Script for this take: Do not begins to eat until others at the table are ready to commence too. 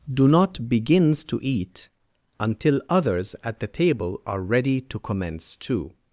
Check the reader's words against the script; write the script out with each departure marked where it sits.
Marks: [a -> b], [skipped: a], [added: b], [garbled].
Do not begins to eat until others at the table are ready to commence too.